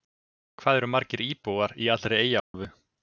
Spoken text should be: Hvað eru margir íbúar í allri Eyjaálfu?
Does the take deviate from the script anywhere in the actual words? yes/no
no